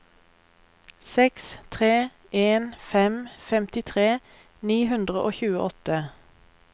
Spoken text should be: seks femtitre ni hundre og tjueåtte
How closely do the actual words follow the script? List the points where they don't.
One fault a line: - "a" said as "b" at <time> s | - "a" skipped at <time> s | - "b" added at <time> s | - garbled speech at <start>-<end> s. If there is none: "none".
- "tre en fem" added at 1.7 s